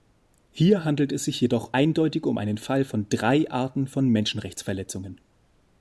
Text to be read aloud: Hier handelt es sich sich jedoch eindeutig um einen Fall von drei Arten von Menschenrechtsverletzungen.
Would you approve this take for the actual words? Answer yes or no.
no